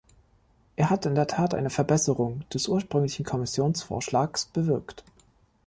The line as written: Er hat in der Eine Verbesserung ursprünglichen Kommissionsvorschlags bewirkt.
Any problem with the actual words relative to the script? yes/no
yes